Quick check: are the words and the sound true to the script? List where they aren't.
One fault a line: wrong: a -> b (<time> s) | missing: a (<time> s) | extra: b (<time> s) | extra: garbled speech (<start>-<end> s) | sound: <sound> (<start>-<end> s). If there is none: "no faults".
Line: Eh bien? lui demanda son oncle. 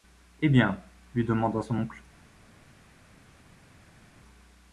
no faults